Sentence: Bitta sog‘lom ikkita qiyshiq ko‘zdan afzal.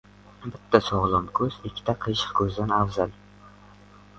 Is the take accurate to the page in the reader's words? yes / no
no